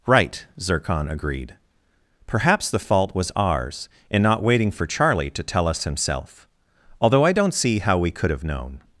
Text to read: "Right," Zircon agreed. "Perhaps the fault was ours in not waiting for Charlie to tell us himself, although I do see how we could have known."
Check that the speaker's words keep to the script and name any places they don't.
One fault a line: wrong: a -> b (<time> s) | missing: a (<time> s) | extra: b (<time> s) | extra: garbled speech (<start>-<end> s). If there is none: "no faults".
wrong: do -> don't (7.3 s)